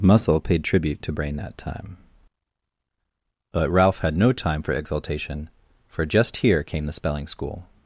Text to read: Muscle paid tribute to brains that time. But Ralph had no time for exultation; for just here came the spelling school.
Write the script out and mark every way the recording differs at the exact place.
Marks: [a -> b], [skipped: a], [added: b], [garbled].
Muscle paid tribute to [brains -> brain] that time. But Ralph had no time for exultation; for just here came the spelling school.